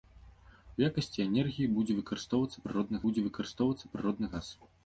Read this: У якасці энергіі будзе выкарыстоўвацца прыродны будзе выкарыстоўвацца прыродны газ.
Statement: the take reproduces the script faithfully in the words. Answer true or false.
true